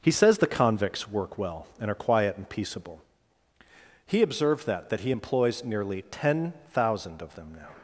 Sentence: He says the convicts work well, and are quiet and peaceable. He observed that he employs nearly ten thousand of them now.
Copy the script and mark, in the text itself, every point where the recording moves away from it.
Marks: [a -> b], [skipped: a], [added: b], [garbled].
He says the convicts work well, and are quiet and peaceable. He observed that [added: that] he employs nearly ten thousand of them now.